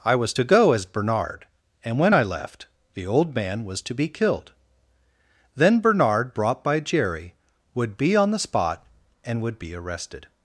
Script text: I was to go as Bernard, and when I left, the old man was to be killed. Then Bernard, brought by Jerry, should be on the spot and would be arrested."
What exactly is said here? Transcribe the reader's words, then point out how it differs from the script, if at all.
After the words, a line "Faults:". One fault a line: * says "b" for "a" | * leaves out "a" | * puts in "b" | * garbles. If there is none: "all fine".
I was to go as Bernard, and when I left, the old man was to be killed. Then Bernard, brought by Jerry, would be on the spot and would be arrested."
Faults:
* says "would" for "should"